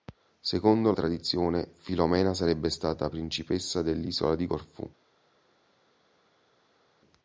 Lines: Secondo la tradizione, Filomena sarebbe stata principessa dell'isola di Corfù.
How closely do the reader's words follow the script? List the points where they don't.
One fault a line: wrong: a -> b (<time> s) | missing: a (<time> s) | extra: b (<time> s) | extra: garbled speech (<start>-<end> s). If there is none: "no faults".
missing: la (0.9 s)